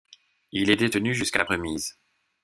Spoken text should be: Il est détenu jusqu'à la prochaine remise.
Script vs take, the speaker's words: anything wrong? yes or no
yes